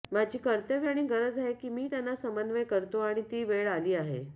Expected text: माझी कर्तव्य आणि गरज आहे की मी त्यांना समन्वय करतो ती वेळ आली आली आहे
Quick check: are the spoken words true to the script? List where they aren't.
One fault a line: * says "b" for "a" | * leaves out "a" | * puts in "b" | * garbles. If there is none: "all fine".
* puts in "आणि"
* leaves out "आली"